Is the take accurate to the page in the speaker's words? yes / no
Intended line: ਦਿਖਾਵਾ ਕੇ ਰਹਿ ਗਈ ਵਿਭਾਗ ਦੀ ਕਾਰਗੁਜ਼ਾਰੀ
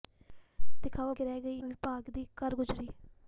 yes